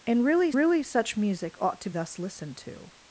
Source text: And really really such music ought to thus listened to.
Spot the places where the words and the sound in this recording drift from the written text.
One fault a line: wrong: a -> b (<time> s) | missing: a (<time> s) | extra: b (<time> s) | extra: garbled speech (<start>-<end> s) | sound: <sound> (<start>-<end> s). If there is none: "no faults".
no faults